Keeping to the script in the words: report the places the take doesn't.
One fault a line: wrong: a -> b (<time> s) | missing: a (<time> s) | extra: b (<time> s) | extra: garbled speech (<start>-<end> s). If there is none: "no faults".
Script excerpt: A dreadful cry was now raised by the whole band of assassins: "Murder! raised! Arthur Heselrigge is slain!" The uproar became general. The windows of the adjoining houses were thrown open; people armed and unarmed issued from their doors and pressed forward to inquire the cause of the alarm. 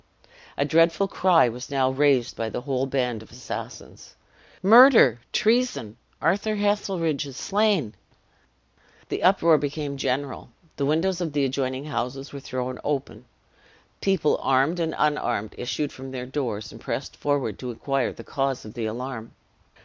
wrong: raised -> treason (5.3 s)